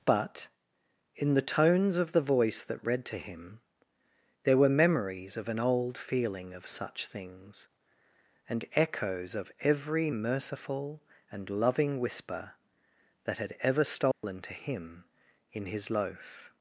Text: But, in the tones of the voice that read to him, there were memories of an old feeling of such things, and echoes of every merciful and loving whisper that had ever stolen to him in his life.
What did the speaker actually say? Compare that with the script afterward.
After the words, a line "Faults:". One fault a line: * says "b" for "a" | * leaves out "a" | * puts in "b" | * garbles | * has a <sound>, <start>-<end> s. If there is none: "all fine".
But, in the tones of the voice that read to him, there were memories of an old feeling of such things, and echoes of every merciful and loving whisper that had ever stolen to him in his loaf.
Faults:
* has a dropout, 14.1-14.2 s
* says "loaf" for "life"